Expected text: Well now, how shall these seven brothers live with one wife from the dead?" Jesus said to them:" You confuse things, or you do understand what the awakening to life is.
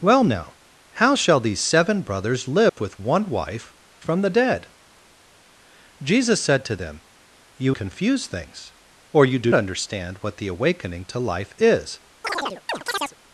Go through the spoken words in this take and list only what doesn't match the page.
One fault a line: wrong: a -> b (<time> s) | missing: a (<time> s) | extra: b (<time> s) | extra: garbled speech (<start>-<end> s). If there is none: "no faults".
no faults